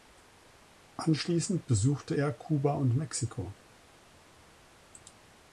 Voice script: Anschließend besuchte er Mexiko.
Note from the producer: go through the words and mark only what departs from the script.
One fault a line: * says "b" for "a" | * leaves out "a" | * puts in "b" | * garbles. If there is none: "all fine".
* puts in "Kuba und"